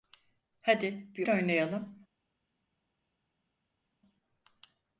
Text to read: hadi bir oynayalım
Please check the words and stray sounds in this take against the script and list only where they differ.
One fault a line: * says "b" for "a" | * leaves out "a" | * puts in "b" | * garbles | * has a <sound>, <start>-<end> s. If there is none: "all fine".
all fine